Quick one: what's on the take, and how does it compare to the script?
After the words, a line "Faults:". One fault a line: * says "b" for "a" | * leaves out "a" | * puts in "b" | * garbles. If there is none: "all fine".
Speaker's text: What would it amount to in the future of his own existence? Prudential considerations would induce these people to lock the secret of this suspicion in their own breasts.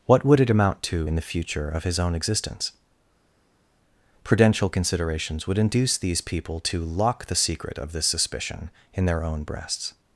What would it amount to in the future of his own existence? Prudential considerations would induce these people to lock the secret of this suspicion in their own breasts.
Faults:
all fine